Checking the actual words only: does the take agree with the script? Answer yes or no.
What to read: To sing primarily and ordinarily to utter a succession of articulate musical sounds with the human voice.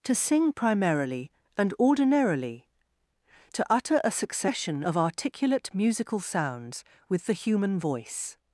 yes